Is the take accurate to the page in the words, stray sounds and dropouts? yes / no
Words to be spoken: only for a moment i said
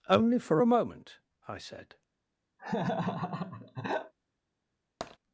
no